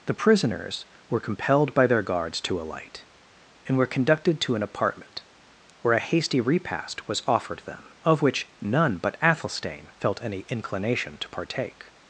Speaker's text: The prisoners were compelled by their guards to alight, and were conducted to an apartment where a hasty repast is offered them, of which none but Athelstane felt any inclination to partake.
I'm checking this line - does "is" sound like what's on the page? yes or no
no